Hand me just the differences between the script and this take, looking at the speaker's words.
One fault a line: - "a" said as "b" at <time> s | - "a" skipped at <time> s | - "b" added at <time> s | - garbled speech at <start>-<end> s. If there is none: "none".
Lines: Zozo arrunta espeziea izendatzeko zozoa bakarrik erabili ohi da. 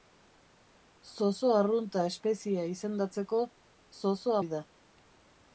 - "bakarrik erabili" skipped at 4.4 s